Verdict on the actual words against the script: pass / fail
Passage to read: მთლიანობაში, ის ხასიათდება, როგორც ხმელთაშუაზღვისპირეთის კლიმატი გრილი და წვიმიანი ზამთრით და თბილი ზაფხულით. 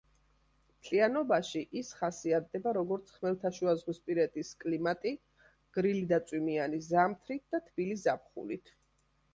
pass